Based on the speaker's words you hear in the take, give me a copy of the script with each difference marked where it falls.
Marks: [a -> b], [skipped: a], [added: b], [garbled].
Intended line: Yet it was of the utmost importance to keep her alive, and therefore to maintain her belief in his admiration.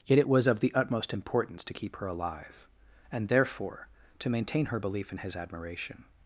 Yet it was of the utmost importance to keep her alive, and therefore to maintain her belief in his admiration.